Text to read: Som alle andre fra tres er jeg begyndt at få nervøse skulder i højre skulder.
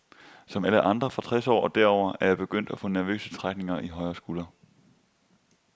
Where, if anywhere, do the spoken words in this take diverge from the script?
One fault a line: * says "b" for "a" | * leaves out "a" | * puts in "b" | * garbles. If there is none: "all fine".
* puts in "år og derover"
* says "trækninger" for "skulder"